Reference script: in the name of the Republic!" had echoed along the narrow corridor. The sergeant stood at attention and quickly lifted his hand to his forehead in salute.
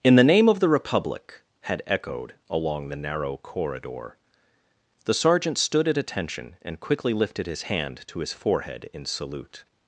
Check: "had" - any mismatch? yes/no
no